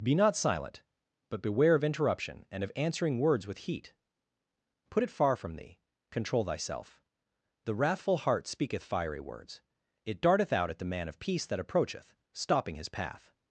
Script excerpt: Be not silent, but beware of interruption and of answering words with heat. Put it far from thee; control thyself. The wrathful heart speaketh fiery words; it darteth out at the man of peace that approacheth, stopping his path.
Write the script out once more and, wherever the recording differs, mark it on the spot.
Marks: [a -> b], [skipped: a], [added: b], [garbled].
Be not silent, but beware of interruption and of answering words with heat. Put it far from thee; control thyself. The wrathful heart speaketh fiery words; it darteth out at the man of peace that approacheth, stopping his path.